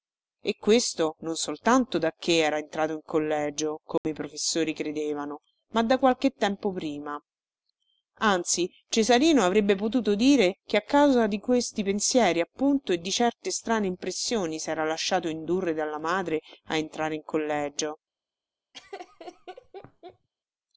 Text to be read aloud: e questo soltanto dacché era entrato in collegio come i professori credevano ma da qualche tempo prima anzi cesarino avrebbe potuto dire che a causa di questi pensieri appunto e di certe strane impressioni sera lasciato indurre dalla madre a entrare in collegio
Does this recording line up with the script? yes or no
no